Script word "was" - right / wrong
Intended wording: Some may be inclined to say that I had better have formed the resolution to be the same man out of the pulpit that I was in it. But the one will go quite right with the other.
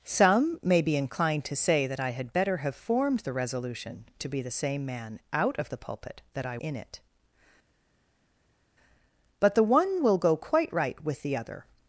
wrong